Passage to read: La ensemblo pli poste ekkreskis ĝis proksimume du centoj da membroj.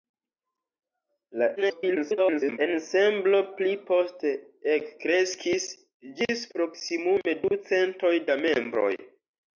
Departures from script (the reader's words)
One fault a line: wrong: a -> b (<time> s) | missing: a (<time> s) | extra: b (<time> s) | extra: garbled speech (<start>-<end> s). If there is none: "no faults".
extra: garbled speech (1.6-2.6 s)